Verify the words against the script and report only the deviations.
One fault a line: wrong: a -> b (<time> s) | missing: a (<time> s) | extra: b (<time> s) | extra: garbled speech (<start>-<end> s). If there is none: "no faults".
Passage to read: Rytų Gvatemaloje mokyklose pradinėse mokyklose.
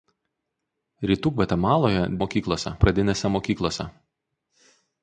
no faults